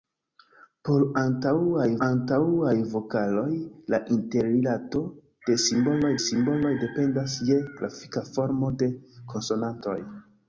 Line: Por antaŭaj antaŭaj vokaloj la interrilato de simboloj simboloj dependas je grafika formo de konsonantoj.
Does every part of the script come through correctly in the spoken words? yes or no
yes